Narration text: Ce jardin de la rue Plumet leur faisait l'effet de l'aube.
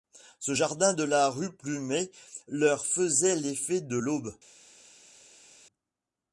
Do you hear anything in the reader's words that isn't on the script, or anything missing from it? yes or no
no